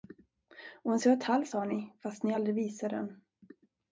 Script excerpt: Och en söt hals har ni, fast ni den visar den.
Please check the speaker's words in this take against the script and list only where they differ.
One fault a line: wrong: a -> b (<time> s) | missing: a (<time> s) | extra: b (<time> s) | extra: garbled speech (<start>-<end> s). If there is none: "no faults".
wrong: den -> aldrig (2.3 s)